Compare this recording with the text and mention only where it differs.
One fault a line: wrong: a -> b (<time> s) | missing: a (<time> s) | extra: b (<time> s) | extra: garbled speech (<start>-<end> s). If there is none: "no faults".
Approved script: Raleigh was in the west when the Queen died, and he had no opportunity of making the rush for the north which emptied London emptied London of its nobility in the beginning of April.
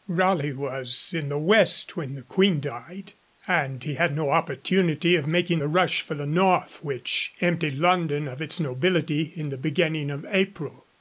missing: emptied London (8.3 s)